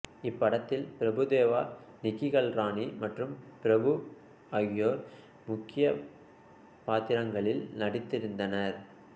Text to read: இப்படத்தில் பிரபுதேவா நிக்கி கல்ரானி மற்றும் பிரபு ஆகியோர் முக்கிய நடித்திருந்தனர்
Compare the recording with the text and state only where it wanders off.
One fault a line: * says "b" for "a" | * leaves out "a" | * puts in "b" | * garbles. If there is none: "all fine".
* puts in "பாத்திரங்களில்"